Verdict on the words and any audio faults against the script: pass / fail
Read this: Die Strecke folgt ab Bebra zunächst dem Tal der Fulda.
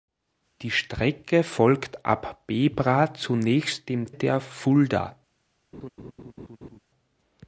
fail